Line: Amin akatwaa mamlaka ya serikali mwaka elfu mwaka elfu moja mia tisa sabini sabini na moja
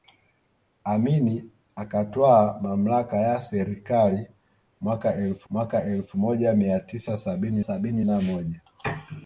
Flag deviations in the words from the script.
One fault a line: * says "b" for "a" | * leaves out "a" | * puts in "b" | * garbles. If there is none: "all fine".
all fine